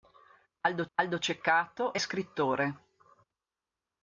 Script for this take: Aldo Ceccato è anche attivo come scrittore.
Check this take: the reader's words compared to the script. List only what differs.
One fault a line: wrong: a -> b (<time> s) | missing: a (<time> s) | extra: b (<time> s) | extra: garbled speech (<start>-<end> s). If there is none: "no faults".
extra: aldo (0.9 s)
missing: anche attivo come (2.0 s)